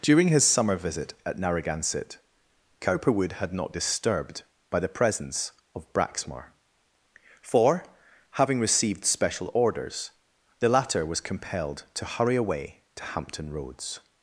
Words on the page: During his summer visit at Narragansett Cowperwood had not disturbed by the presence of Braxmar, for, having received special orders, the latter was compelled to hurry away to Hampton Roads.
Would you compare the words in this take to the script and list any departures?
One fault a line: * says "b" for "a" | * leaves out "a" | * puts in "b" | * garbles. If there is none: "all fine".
all fine